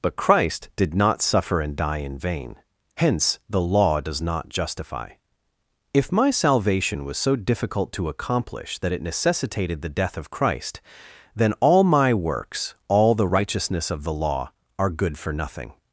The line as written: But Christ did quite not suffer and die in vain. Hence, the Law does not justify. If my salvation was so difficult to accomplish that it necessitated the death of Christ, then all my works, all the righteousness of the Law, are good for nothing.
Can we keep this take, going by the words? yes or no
no